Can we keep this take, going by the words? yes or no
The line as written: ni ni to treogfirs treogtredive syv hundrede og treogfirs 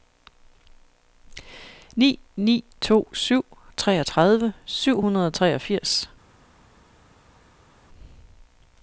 no